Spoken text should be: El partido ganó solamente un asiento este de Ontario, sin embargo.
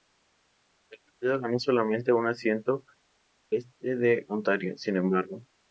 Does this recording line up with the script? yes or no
yes